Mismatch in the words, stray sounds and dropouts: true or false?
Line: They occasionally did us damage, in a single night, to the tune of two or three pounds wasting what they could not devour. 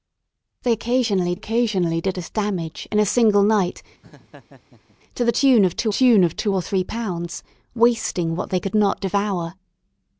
true